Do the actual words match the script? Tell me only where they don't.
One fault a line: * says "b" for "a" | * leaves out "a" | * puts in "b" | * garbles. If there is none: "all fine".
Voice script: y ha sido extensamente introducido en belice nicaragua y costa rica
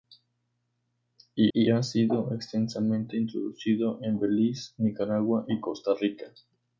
* puts in "y"